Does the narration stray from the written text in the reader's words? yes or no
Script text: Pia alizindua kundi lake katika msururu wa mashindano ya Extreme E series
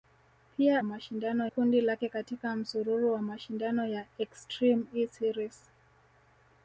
yes